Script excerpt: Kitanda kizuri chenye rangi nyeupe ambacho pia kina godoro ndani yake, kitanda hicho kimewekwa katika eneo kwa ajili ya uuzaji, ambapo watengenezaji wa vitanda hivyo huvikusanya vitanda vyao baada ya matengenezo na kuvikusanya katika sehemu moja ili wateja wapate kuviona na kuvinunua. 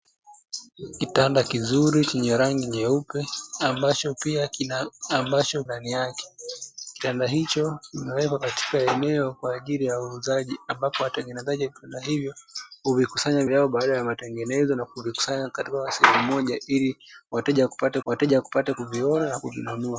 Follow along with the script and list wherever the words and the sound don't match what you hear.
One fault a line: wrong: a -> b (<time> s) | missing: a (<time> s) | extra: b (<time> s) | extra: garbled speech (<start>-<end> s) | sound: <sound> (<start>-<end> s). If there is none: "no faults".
wrong: godoro -> ambacho (5.1 s)
missing: vitanda (13.4 s)
extra: wateja wapate (18.0 s)